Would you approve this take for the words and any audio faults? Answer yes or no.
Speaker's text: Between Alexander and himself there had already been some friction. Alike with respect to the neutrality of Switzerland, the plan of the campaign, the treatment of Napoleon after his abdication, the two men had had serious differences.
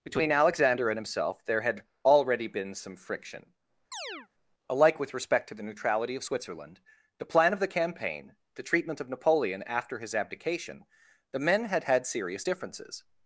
no